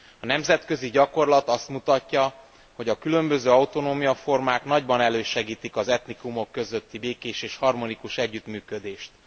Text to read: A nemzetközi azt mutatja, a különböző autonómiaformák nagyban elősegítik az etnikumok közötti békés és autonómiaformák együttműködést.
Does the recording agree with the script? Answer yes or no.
no